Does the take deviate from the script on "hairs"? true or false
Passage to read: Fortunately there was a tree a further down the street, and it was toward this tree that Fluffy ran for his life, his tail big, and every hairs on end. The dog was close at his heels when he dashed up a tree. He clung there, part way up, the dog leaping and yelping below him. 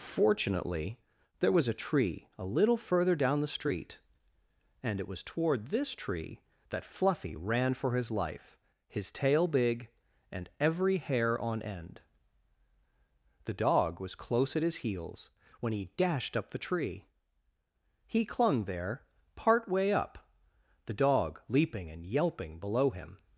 true